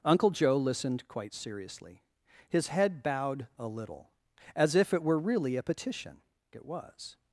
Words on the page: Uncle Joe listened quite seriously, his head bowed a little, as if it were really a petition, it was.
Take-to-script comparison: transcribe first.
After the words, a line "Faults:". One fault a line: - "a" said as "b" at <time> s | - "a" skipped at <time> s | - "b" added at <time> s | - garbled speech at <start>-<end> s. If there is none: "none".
Uncle Joe listened quite seriously, his head bowed a little, as if it were really a petition, it was.
Faults:
none